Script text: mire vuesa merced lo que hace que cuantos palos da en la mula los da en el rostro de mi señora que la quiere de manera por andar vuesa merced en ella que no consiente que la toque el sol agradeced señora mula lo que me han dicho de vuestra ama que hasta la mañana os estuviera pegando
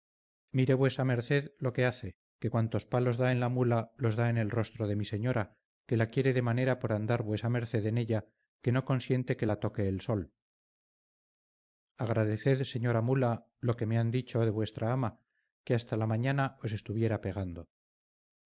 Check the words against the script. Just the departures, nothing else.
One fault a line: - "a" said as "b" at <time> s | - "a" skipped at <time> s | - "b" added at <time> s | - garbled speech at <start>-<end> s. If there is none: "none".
none